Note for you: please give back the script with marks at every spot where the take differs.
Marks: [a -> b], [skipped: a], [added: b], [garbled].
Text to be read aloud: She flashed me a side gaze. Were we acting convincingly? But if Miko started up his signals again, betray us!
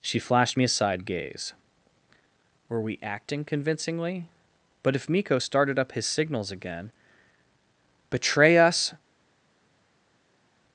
She flashed me a side gaze. Were we acting convincingly? But if Miko started up his signals again, betray us!